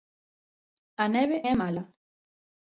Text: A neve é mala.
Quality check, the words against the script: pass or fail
pass